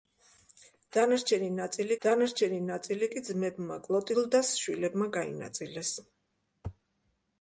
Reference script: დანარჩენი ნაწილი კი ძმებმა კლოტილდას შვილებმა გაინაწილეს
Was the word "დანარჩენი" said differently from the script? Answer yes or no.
no